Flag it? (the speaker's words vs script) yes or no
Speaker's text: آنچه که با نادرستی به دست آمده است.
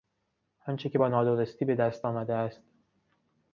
no